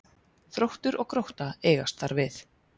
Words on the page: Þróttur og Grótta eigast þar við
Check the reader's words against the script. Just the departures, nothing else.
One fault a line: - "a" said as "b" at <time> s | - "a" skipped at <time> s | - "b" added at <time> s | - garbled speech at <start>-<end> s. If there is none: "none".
none